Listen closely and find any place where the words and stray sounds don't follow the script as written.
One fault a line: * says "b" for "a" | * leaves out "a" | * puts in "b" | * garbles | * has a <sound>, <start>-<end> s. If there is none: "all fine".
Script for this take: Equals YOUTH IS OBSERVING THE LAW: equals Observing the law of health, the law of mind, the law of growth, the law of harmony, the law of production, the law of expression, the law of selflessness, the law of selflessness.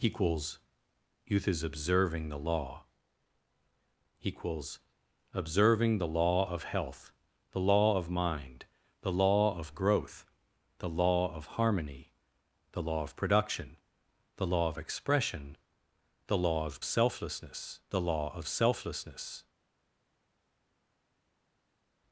all fine